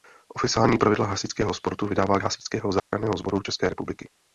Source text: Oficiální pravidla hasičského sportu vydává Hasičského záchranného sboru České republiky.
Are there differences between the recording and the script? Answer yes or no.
no